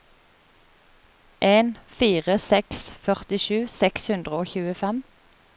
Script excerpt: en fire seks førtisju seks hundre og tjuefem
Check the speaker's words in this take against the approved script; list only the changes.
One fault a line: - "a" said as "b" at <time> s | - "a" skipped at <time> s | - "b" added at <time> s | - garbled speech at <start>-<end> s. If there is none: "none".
none